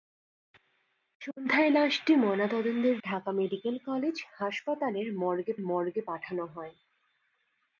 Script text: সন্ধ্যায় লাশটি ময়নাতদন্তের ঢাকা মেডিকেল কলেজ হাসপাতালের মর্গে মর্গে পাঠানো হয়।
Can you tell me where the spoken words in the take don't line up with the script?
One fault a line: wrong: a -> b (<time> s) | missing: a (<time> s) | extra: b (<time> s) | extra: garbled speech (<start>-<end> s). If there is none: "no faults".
no faults